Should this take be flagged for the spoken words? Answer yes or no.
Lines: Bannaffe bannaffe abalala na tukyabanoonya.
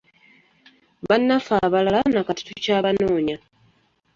yes